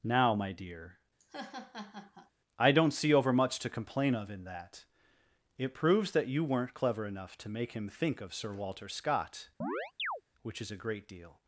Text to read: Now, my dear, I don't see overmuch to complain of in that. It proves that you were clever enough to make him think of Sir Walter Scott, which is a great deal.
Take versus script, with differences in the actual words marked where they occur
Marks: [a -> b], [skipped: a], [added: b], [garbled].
Now, my dear, I don't see overmuch to complain of in that. It proves that you [were -> weren't] clever enough to make him think of Sir Walter Scott, which is a great deal.